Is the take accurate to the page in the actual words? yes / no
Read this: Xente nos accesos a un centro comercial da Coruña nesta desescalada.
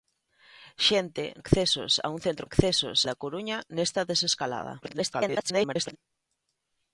no